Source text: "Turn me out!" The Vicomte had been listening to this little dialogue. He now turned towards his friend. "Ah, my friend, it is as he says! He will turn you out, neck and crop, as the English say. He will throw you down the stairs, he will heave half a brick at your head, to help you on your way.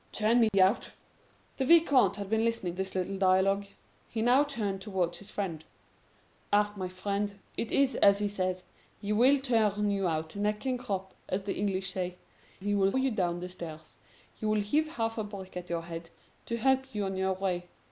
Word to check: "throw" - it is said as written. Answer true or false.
false